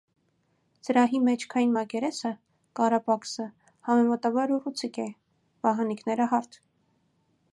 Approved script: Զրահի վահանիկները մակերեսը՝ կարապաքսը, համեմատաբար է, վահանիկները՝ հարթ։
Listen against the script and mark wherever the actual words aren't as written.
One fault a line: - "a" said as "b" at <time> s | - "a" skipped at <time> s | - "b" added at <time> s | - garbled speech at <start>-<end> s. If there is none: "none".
- "վահանիկները" said as "մեջքային" at 1.2 s
- "ուռուցիկ" added at 4.6 s